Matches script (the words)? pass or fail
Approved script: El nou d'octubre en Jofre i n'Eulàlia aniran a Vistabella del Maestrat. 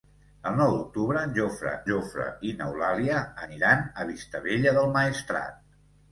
fail